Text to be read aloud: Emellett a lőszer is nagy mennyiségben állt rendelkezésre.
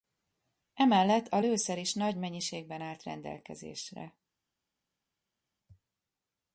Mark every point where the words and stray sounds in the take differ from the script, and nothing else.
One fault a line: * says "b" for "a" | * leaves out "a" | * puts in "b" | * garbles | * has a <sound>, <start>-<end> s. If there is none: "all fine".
all fine